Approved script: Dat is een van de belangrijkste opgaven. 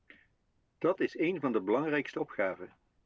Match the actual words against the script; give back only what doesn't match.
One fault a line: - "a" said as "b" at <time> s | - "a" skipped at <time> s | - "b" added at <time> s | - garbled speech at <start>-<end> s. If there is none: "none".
none